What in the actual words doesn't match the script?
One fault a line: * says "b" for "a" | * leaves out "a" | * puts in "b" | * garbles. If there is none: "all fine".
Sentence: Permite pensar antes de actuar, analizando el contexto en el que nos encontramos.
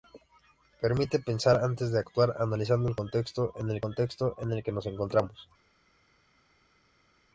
* puts in "contexto en el"